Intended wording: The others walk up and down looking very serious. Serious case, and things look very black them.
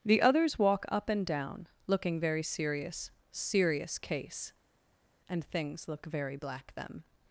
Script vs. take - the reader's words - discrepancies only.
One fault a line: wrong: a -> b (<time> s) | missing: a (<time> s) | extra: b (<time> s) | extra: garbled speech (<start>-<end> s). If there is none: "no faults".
no faults